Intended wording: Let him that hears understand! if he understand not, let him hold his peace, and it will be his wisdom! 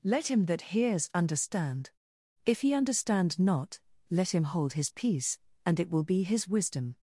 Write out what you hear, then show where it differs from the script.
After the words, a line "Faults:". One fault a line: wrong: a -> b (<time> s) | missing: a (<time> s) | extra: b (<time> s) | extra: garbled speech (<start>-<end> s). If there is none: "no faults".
Let him that hears understand! if he understand not, let him hold his peace, and it will be his wisdom!
Faults:
no faults